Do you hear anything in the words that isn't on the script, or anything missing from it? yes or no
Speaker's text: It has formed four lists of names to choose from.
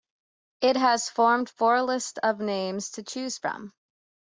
no